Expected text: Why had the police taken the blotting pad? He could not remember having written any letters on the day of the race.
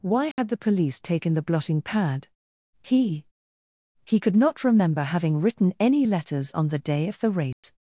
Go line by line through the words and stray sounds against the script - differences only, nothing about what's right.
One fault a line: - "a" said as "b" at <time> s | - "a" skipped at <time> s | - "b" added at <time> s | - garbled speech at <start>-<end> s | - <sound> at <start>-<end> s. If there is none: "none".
- dropout at 0.3-0.4 s
- "He" added at 4.0 s
- dropout at 7.5-7.6 s